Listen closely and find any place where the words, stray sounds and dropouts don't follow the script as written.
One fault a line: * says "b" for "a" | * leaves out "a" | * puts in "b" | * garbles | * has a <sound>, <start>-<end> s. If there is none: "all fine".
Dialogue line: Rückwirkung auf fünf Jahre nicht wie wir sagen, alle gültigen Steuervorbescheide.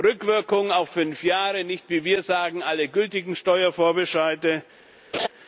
* has a laugh, 5.1-5.3 s